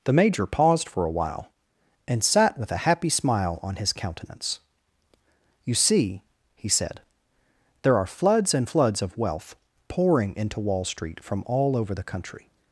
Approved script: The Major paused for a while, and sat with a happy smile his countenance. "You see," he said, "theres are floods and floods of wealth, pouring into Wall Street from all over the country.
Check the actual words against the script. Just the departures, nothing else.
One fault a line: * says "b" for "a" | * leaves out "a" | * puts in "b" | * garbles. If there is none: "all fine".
* puts in "on"
* says "there" for "theres"